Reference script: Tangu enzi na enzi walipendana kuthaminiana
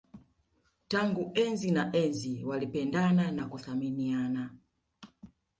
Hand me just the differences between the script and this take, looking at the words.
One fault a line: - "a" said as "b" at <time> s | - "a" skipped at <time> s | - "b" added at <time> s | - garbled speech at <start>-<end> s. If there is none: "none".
- "na" added at 3.3 s